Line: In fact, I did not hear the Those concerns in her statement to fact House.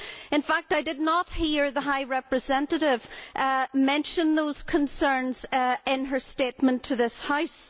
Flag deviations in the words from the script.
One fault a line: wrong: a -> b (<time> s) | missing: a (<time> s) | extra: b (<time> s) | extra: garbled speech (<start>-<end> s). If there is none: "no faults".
extra: High Representative mention (1.8 s)
wrong: fact -> this (7.0 s)